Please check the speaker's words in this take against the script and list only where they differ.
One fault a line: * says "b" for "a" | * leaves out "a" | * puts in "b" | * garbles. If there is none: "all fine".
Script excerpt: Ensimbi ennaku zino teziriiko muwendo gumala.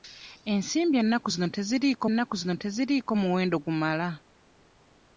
* puts in "ennaku zino teziriiko"